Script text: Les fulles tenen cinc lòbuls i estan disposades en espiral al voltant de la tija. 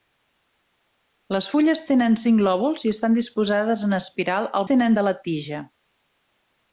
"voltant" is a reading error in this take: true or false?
true